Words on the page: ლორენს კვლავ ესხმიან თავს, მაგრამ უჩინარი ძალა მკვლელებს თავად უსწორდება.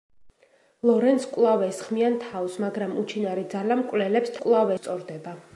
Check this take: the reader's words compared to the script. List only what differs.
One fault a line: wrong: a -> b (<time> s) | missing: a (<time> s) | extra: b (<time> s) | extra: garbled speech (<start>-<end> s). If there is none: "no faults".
wrong: თავად -> კვლავ (4.4 s)